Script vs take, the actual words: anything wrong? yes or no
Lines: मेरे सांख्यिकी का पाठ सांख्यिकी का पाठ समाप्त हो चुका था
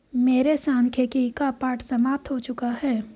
yes